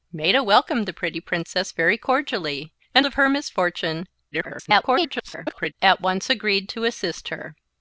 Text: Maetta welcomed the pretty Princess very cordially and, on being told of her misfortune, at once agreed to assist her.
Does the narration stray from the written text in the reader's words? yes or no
yes